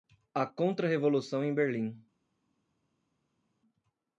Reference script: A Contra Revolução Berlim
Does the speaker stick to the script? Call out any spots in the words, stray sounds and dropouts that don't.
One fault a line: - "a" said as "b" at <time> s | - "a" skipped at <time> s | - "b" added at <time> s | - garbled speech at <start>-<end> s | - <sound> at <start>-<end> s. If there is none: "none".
- "em" added at 1.4 s